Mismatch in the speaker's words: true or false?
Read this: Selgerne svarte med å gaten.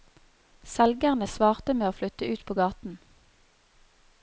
true